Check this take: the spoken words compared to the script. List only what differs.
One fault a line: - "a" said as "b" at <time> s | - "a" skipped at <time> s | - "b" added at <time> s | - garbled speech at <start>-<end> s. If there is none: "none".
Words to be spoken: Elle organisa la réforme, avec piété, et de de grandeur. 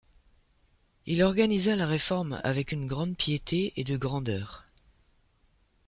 - "Elle" said as "Il" at 1.1 s
- "une grande" added at 2.7 s
- "de" skipped at 4.0 s